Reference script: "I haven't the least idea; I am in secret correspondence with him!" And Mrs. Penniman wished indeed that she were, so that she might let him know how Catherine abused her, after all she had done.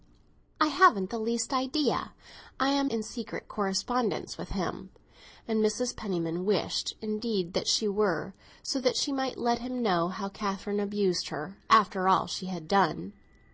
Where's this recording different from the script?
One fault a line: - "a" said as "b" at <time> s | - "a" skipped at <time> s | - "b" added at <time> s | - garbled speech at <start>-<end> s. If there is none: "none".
none